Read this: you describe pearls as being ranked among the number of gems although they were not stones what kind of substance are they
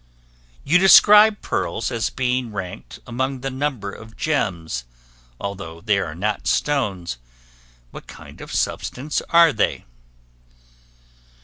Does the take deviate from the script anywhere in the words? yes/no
yes